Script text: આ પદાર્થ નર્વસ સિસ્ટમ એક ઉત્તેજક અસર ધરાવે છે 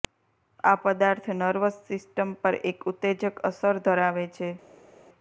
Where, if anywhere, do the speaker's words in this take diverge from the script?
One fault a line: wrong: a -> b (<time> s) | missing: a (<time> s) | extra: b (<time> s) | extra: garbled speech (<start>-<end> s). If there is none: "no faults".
extra: પર (2.4 s)